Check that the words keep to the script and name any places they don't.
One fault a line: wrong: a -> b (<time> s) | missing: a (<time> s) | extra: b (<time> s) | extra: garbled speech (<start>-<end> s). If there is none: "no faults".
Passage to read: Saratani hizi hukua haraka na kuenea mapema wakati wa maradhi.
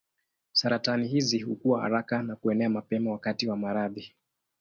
no faults